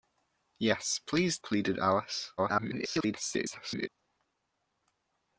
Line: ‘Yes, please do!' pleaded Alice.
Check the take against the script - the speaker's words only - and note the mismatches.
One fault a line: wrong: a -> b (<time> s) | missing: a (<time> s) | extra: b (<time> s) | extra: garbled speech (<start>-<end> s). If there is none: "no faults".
missing: do (1.4 s)
extra: garbled speech (2.4-3.9 s)